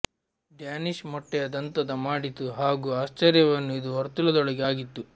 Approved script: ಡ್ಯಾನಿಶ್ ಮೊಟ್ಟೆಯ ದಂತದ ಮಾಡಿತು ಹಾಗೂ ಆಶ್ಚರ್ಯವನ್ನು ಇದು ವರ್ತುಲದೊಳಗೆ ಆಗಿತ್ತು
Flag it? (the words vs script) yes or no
no